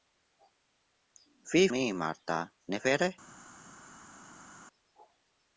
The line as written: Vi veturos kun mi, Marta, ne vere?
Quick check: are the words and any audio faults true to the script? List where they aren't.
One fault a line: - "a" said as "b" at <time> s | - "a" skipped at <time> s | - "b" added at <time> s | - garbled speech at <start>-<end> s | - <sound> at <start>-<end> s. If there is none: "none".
- "veturos kun" skipped at 1.6 s